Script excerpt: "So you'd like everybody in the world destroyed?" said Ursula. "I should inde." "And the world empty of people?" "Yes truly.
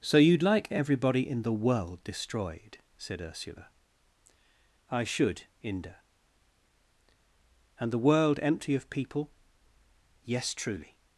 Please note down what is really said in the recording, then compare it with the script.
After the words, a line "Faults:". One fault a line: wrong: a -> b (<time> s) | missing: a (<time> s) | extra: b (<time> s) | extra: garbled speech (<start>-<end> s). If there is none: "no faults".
"So you'd like everybody in the world destroyed?" said Ursula. "I should inde." "And the world empty of people?" "Yes truly.
Faults:
no faults